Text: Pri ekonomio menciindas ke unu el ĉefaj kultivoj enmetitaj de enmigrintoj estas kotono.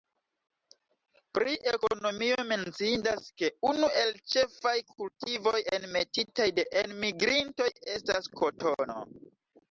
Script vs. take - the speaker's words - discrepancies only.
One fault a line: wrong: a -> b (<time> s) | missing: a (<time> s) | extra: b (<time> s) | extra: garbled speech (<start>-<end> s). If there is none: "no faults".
no faults